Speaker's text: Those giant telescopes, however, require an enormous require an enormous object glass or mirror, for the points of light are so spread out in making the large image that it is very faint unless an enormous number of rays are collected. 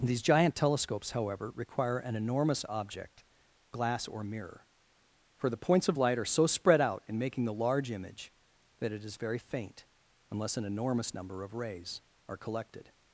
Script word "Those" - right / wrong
wrong